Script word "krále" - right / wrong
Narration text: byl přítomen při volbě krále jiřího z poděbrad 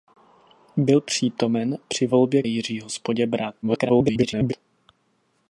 wrong